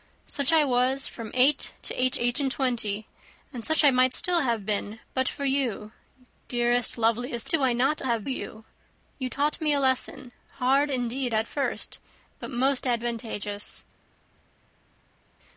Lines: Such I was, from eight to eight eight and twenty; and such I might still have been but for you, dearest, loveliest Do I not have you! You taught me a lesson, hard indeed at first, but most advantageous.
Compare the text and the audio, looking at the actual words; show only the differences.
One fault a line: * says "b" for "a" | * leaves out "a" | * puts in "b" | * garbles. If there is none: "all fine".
all fine